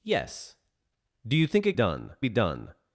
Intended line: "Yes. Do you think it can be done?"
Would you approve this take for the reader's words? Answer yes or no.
no